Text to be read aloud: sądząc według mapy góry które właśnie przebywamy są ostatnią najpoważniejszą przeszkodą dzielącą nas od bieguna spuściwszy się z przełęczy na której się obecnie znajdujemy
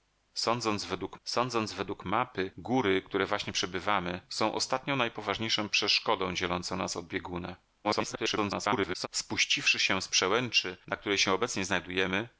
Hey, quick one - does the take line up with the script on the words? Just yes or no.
no